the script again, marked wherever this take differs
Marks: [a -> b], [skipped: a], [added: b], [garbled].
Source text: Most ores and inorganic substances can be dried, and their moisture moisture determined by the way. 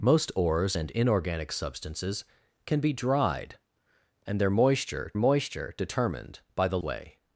Most ores and inorganic substances can be dried, and their moisture moisture determined by the way.